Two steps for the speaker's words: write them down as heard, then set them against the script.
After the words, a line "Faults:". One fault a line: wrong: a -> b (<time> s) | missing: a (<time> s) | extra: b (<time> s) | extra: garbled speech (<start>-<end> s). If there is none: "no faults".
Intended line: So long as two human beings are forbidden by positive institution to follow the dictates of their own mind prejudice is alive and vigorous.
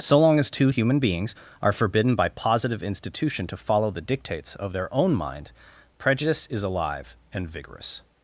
So long as two human beings are forbidden by positive institution to follow the dictates of their own mind prejudice is alive and vigorous.
Faults:
no faults